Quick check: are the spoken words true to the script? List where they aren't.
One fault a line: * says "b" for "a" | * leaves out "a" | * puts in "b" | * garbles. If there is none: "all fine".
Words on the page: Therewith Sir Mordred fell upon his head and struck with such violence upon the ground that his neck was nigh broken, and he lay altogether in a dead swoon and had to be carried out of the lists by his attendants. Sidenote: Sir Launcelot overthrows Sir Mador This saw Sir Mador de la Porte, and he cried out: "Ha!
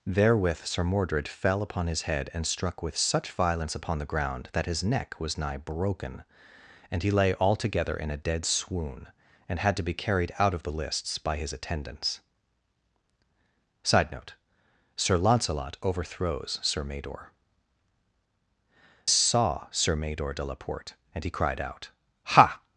* leaves out "This"